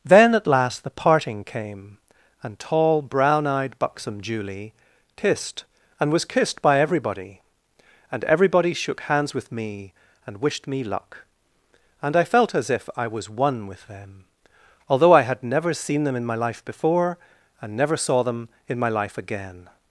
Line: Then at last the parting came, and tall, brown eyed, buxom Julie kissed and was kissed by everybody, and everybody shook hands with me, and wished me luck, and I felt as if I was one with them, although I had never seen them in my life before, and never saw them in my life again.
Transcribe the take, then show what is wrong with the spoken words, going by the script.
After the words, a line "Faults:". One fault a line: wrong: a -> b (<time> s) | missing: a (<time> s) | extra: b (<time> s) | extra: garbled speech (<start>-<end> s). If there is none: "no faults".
Then at last the parting came, and tall, brown eyed, buxom Julie kissed and was kissed by everybody, and everybody shook hands with me, and wished me luck, and I felt as if I was one with them, although I had never seen them in my life before, and never saw them in my life again.
Faults:
no faults